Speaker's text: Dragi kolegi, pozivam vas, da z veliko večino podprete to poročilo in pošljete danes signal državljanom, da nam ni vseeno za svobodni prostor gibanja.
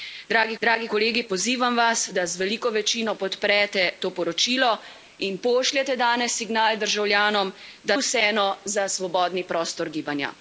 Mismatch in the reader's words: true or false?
true